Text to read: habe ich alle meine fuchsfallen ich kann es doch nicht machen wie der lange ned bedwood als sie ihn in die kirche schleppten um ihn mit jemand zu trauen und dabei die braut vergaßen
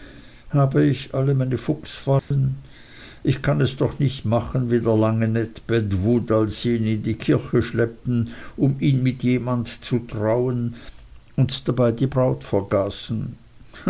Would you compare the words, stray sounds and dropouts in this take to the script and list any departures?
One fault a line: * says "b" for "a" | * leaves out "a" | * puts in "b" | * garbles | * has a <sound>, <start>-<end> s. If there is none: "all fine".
* has a dropout, 2.2-2.3 s